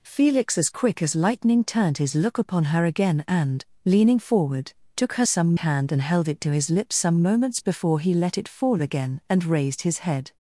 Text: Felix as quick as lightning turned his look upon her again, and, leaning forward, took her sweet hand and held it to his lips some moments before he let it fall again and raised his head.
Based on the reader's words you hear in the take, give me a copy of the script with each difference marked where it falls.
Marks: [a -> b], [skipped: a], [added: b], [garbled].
Felix as quick as lightning turned his look upon her again, and, leaning forward, took her [sweet -> some] hand and held it to his lips some moments before he let it fall again and raised his head.